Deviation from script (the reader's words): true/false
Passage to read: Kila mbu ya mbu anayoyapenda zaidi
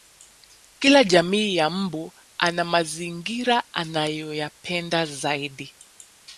true